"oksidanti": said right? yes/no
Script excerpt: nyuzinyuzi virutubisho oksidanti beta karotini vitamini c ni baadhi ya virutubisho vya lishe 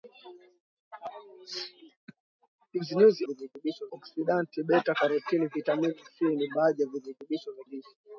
yes